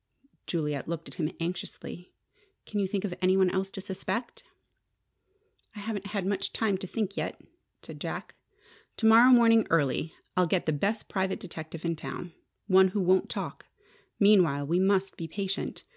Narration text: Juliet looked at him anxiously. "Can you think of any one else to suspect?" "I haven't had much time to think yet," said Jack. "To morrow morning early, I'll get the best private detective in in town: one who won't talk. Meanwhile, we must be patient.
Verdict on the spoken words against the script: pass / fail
fail